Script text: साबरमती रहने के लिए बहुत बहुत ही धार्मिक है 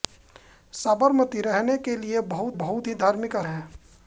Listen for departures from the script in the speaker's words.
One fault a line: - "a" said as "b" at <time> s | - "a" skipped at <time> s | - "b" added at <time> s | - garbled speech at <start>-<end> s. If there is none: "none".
none